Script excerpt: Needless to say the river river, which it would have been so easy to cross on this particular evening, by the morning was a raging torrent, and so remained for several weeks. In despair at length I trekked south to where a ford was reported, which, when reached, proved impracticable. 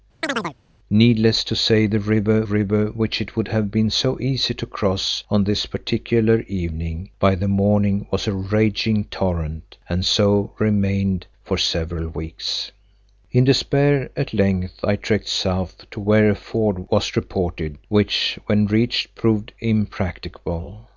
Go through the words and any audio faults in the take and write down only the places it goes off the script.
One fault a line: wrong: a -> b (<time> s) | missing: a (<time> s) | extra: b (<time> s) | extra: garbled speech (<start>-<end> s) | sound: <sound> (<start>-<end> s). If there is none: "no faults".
sound: chirp (0.2-0.6 s)